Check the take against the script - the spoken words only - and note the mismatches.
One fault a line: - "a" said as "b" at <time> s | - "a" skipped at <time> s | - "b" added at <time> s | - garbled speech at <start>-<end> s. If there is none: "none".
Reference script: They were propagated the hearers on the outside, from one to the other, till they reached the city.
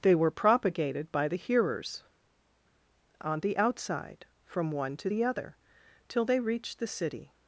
- "by" added at 1.1 s